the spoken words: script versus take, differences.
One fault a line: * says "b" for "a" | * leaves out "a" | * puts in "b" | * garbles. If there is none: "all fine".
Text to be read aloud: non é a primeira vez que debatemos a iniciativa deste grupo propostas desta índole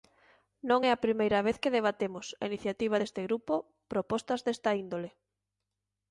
all fine